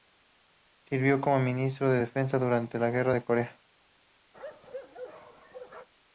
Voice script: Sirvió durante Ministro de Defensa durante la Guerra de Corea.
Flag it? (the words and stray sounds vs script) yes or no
yes